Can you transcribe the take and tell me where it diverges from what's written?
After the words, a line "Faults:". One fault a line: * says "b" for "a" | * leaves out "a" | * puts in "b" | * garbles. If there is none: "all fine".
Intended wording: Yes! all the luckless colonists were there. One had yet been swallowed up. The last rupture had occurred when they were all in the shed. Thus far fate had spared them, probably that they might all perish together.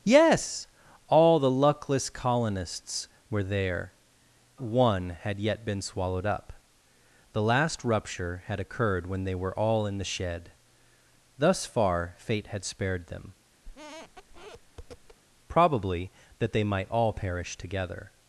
Yes! all the luckless colonists were there. One had yet been swallowed up. The last rupture had occurred when they were all in the shed. Thus far fate had spared them, probably that they might all perish together.
Faults:
all fine